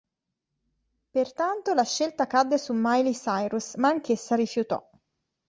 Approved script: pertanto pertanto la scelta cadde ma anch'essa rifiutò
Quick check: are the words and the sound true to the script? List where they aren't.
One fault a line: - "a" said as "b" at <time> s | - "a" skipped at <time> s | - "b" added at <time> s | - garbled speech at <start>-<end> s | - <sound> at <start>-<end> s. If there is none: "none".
- "pertanto" skipped at 1.8 s
- "su miley cyrus" added at 2.6 s